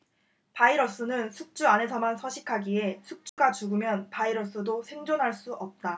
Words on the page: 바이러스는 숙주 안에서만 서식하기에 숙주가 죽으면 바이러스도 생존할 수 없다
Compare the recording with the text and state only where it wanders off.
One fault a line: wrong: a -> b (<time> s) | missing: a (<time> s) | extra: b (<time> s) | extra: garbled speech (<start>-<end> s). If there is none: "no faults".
no faults